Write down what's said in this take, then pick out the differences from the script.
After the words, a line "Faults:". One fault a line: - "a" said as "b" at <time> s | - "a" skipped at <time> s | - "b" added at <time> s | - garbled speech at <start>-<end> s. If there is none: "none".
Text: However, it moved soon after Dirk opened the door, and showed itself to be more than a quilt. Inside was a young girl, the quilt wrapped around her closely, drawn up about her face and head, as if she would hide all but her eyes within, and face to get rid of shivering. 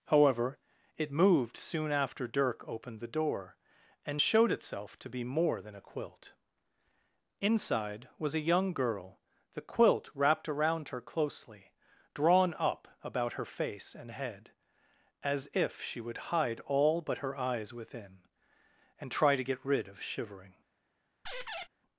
However, it moved soon after Dirk opened the door, and showed itself to be more than a quilt. Inside was a young girl, the quilt wrapped around her closely, drawn up about her face and head, as if she would hide all but her eyes within, and try to get rid of shivering.
Faults:
- "face" said as "try" at 19.1 s